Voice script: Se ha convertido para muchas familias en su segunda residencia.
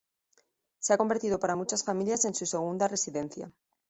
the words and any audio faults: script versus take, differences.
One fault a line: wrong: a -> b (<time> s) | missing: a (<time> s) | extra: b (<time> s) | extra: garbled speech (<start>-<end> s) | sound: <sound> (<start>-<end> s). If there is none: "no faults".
no faults